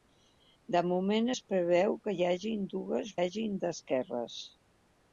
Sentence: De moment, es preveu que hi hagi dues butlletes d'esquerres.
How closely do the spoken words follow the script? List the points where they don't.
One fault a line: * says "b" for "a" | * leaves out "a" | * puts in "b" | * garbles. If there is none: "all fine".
* says "hagi" for "butlletes"